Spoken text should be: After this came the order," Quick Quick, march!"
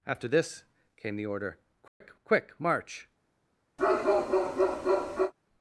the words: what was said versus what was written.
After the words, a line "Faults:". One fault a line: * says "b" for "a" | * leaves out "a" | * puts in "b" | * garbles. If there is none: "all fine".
After this came the order," Quick Quick, march!"
Faults:
all fine